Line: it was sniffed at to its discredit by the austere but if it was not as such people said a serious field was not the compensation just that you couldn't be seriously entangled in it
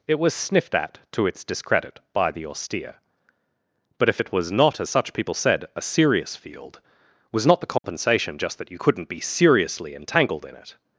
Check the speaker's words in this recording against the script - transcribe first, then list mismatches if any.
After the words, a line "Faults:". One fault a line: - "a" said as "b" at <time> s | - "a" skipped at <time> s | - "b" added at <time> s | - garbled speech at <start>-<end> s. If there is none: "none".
it was sniffed at to its discredit by the austere but if it was not as such people said a serious field was not the compensation just that you couldn't be seriously entangled in it
Faults:
none